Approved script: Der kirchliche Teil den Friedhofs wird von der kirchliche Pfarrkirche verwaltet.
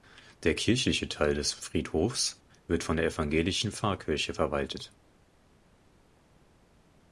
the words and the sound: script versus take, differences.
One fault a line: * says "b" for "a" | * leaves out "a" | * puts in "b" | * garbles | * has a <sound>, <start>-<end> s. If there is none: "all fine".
* says "des" for "den"
* says "evangelischen" for "kirchliche"